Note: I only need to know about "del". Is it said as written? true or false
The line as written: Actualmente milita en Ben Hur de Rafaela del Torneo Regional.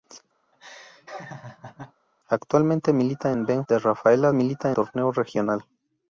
false